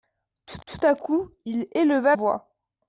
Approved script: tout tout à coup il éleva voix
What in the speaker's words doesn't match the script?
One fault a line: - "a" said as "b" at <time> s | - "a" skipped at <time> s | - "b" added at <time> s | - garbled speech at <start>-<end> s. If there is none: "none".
none